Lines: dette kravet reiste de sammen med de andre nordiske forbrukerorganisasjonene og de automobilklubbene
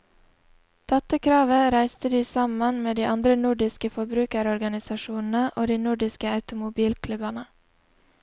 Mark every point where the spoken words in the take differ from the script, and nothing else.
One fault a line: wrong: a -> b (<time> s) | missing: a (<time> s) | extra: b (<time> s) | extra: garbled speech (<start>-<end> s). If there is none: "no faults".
extra: nordiske (5.9 s)